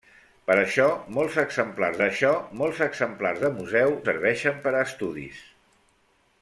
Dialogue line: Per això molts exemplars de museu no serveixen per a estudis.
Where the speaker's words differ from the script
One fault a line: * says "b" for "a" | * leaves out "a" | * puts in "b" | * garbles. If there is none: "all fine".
* puts in "això molts exemplars"
* leaves out "no"